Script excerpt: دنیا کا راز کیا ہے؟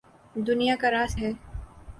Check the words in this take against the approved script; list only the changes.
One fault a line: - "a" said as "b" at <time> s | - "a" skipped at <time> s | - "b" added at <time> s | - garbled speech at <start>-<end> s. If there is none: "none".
- "کیا" skipped at 1.2 s